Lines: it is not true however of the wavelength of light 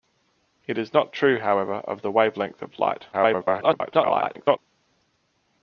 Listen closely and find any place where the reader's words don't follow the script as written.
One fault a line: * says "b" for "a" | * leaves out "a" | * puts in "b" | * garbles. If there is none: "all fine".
* garbles